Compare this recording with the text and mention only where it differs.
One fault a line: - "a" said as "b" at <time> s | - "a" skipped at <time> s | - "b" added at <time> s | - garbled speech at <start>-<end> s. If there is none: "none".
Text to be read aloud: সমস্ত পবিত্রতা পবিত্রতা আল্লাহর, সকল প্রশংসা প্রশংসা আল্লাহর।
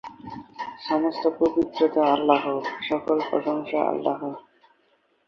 - "পবিত্রতা" skipped at 2.0 s
- "প্রশংসা" skipped at 3.8 s